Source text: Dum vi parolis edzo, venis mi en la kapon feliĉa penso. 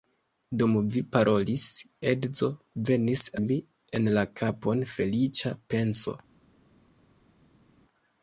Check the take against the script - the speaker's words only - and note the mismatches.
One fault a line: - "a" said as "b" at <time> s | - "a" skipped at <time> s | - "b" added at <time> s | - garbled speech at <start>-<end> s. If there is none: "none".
none